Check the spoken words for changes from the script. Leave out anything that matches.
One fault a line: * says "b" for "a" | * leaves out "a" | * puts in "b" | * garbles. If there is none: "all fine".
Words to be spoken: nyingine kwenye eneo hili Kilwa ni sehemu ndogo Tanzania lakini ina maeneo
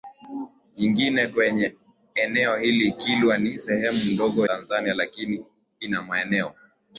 all fine